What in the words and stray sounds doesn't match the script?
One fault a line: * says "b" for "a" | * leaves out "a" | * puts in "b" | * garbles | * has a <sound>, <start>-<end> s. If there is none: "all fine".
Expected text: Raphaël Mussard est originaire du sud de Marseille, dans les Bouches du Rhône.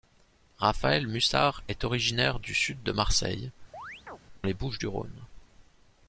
* leaves out "dans"
* has a chirp, 3.7-4.2 s